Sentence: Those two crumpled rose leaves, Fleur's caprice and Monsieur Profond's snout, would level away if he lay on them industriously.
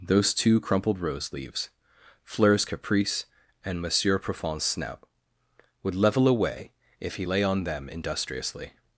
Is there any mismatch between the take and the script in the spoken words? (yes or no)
no